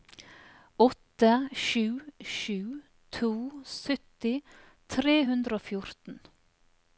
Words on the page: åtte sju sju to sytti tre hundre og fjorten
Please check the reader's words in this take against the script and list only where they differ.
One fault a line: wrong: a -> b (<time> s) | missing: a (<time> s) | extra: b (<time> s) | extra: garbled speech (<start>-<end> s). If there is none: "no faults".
no faults